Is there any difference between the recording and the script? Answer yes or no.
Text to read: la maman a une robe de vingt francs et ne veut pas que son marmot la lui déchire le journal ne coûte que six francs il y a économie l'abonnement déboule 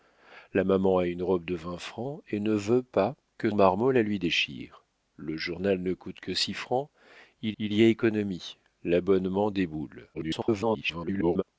yes